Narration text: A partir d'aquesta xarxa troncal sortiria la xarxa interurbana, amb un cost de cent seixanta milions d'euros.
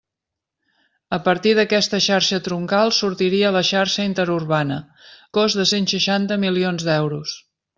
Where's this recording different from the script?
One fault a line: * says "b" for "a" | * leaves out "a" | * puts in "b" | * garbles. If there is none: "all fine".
* leaves out "amb un"